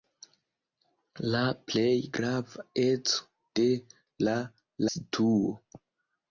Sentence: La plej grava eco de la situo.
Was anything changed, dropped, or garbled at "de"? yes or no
no